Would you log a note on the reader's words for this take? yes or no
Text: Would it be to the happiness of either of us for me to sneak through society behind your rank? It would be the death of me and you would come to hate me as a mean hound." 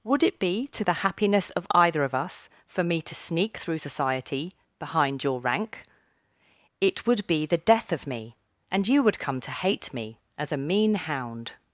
no